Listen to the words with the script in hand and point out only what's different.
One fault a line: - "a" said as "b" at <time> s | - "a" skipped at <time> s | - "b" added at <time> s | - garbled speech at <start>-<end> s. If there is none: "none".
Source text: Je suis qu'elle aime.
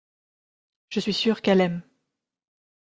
- "sûr" added at 1.1 s